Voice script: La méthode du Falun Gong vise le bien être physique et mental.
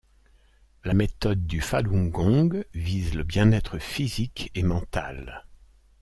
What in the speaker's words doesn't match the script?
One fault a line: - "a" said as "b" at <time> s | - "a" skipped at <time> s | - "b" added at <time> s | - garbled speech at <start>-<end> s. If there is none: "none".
none